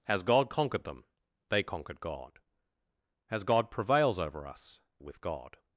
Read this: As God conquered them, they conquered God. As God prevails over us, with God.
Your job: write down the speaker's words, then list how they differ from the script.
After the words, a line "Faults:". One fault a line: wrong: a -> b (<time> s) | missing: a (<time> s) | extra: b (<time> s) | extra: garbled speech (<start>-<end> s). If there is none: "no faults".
As God conquered them, they conquered God. As God prevails over us, with God.
Faults:
no faults